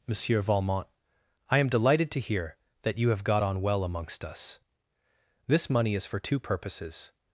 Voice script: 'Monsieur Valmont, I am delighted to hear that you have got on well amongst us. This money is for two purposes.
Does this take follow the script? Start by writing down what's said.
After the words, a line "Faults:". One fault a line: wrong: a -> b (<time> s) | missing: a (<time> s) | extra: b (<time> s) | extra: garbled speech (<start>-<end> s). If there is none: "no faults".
'Monsieur Valmont, I am delighted to hear that you have got on well amongst us. This money is for two purposes.
Faults:
no faults